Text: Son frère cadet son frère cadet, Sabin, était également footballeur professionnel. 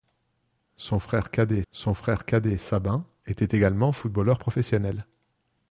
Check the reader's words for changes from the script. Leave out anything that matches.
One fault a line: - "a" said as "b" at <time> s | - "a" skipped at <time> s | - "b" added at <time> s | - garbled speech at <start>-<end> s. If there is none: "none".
none